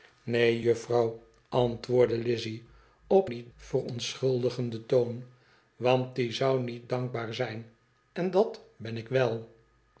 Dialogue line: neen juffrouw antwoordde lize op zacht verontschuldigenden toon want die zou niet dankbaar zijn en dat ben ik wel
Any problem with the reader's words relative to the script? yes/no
yes